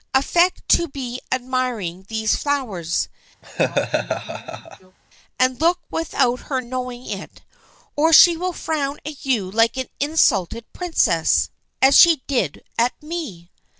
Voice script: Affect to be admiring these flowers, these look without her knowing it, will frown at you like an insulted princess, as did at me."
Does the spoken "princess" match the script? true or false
true